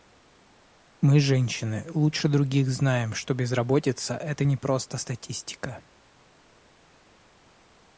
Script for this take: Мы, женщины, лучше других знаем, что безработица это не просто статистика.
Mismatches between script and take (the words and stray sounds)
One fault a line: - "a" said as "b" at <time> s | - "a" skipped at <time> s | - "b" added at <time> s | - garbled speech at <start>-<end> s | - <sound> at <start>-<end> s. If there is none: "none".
none